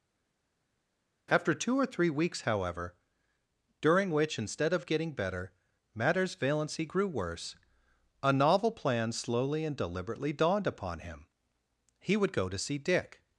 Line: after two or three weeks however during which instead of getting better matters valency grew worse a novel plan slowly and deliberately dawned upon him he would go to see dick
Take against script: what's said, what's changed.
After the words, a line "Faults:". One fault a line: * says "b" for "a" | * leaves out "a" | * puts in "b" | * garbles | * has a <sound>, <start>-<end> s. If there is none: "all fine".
after two or three weeks however during which instead of getting better matters valency grew worse a novel plan slowly and deliberately dawned upon him he would go to see dick
Faults:
all fine